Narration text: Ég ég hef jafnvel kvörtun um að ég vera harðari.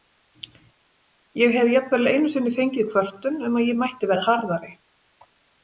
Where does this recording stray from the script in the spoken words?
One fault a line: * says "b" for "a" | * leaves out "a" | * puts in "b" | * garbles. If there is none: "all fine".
* leaves out "ég"
* puts in "einu sinni fengið"
* puts in "mætti"